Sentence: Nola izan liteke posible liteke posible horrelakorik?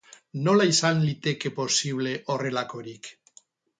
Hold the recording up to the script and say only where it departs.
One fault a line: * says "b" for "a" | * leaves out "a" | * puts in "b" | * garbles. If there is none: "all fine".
* leaves out "liteke posible"